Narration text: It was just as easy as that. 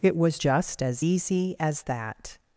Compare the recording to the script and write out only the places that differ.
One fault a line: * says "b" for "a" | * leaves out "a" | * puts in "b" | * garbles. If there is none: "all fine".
all fine